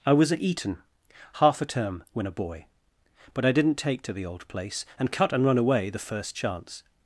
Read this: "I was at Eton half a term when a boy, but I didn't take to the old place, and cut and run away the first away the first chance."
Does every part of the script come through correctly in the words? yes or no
no